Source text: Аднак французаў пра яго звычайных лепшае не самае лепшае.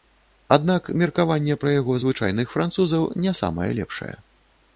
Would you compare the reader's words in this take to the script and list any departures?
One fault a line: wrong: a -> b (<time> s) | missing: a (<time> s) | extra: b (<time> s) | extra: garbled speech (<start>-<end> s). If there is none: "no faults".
wrong: французаў -> меркаванне (1.0 s)
wrong: лепшае -> французаў (2.6 s)